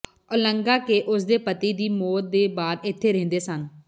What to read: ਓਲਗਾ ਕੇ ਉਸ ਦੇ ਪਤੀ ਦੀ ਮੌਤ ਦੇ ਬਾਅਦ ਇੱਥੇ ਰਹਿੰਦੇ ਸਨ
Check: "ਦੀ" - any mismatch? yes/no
no